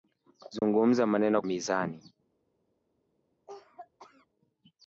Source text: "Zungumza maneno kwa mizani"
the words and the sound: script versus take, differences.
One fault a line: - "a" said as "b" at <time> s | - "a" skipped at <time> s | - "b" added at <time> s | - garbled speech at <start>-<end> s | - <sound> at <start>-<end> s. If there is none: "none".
- dropout at 0.6-0.6 s
- "kwa" skipped at 1.4 s
- cough at 3.5-4.3 s